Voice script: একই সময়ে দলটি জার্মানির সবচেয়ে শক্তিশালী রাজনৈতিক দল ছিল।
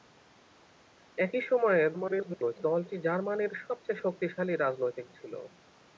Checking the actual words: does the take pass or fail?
fail